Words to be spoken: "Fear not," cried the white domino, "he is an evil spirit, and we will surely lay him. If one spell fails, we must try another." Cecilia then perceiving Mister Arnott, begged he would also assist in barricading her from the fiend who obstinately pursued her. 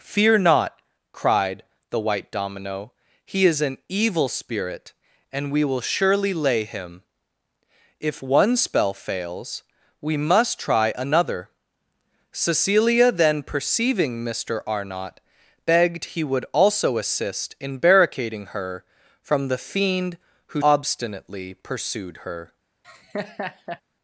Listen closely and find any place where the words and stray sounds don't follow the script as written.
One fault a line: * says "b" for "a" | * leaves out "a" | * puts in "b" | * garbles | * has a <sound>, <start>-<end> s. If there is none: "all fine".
* has a laugh, 22.8-23.8 s